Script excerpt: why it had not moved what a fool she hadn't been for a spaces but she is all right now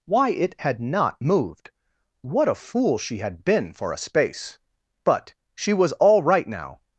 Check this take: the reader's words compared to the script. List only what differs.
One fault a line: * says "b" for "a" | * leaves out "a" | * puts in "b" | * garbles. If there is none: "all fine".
* says "had" for "hadn't"
* says "space" for "spaces"
* says "was" for "is"